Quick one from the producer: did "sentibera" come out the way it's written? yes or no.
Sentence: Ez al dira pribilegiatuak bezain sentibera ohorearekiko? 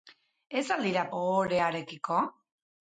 no